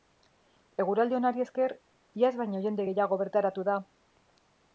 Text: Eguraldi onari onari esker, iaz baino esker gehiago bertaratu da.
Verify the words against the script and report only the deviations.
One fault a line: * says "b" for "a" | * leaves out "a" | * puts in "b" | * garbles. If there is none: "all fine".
* leaves out "onari"
* says "jende" for "esker"